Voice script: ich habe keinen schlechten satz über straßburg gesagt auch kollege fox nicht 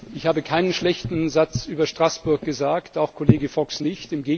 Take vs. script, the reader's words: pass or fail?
pass